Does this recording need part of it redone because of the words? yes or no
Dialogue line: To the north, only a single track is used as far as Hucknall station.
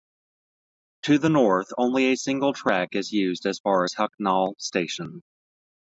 no